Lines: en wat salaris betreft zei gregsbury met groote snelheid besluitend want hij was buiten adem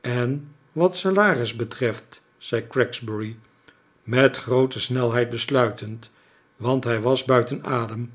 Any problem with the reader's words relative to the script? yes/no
no